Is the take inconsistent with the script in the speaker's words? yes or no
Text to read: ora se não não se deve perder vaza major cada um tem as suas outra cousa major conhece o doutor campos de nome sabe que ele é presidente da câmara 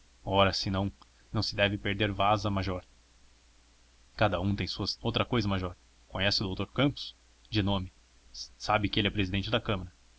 no